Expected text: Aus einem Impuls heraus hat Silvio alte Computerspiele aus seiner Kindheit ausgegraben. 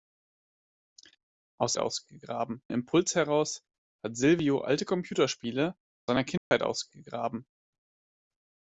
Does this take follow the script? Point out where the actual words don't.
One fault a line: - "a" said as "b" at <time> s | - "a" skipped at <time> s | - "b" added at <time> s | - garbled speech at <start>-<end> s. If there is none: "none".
- "einem" said as "ausgegraben" at 1.8 s
- "aus" skipped at 5.8 s